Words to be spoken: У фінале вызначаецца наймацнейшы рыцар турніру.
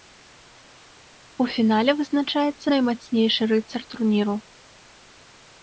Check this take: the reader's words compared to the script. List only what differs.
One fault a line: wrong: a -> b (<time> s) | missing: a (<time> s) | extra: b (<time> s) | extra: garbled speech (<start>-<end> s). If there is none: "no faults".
no faults